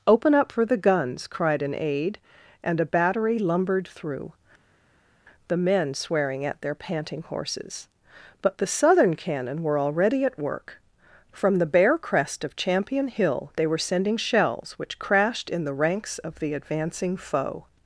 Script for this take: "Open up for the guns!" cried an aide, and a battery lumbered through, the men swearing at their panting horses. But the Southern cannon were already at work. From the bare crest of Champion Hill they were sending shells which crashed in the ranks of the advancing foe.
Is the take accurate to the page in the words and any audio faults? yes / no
yes